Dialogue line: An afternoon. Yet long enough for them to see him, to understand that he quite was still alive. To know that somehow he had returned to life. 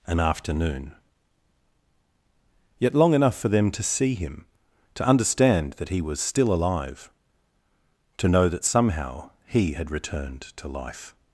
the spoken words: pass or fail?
fail